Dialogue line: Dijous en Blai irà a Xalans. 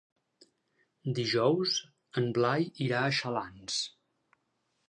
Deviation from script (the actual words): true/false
false